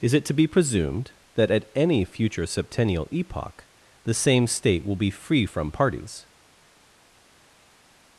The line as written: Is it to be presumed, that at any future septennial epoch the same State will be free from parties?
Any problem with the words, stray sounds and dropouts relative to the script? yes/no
no